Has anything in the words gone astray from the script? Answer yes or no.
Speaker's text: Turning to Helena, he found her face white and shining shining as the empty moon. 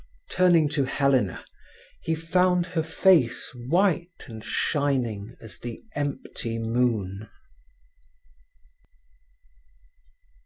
yes